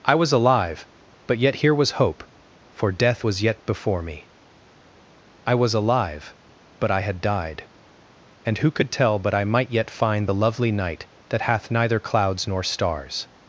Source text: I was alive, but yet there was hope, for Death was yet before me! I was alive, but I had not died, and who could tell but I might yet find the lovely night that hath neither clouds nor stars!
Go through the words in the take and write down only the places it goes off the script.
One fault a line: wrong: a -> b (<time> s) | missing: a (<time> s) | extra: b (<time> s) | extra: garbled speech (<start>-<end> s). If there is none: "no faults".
wrong: there -> here (1.6 s)
missing: not (7.2 s)